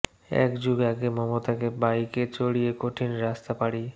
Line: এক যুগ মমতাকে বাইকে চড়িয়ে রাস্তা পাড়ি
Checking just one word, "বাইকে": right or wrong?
right